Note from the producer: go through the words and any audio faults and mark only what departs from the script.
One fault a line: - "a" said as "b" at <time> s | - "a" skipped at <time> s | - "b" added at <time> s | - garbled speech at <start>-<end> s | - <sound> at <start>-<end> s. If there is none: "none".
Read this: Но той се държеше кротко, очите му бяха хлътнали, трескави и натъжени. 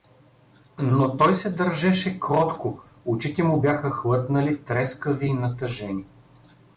none